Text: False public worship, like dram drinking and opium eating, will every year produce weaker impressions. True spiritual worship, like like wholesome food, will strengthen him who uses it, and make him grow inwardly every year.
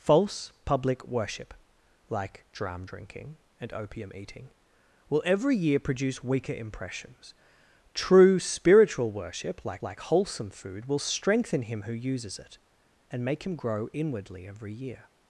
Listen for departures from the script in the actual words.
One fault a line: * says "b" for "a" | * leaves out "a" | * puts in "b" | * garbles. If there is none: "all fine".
all fine